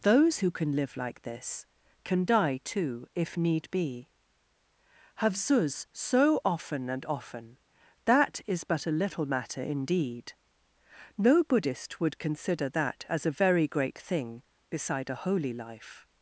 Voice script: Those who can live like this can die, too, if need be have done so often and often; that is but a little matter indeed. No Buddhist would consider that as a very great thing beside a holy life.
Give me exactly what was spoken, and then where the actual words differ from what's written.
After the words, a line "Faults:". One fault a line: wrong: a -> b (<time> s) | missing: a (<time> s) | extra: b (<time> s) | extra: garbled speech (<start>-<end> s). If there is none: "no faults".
Those who can live like this can die, too, if need be have zuz so often and often; that is but a little matter indeed. No Buddhist would consider that as a very great thing beside a holy life.
Faults:
wrong: done -> zuz (5.4 s)